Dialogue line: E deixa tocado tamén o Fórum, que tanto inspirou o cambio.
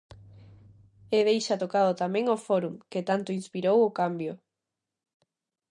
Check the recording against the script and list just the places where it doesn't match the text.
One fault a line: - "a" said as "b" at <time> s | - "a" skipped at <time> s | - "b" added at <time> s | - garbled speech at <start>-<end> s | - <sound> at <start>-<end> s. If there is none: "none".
none